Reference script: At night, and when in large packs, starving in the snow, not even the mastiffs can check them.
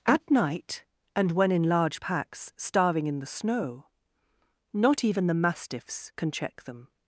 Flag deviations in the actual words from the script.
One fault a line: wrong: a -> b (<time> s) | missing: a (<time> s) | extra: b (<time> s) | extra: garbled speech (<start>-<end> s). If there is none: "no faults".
no faults